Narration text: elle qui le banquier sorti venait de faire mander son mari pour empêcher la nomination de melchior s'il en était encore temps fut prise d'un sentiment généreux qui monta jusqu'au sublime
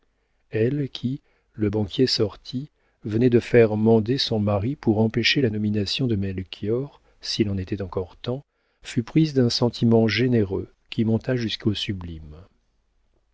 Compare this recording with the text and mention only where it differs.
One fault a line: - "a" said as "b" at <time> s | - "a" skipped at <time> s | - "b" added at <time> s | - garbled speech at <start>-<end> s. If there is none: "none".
none